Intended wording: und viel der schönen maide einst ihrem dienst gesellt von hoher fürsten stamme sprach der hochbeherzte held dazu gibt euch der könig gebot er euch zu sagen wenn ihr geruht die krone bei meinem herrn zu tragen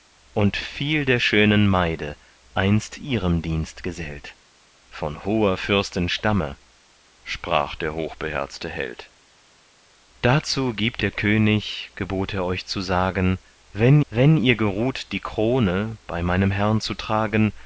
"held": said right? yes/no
yes